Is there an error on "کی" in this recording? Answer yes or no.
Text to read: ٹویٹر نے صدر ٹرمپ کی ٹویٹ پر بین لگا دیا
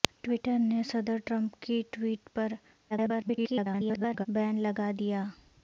no